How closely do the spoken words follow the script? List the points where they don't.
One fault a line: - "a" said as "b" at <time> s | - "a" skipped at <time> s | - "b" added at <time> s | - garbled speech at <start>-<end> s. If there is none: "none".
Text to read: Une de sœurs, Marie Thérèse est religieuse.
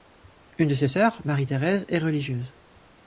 - "ses" added at 0.7 s